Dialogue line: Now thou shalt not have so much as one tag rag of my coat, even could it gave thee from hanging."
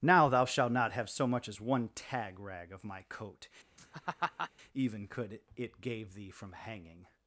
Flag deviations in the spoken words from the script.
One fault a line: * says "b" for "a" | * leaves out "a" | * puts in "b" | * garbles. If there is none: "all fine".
all fine